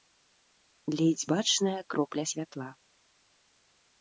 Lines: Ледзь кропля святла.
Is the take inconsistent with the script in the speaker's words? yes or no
yes